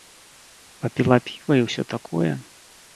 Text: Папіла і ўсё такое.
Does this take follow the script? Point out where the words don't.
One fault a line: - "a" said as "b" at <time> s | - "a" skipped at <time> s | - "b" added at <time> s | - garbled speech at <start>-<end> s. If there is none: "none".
- "піва" added at 1.3 s